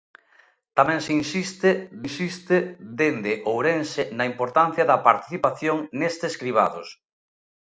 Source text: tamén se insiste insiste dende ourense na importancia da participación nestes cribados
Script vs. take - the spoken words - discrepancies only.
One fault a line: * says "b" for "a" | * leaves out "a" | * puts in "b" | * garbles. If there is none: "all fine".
all fine